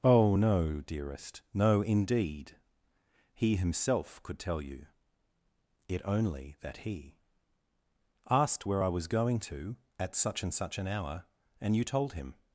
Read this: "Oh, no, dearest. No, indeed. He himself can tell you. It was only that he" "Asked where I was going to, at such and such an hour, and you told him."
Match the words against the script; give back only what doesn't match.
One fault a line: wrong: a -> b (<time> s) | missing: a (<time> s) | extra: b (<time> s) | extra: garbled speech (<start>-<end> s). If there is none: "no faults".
wrong: can -> could (4.2 s)
missing: was (6.0 s)